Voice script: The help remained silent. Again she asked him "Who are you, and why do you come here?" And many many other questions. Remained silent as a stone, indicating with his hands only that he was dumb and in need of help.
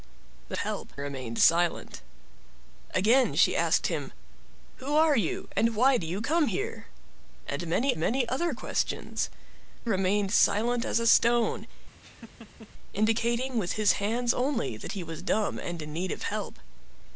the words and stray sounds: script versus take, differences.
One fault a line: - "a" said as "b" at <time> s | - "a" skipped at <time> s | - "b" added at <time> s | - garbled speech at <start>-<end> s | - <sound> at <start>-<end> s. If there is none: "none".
- laugh at 12.0-12.7 s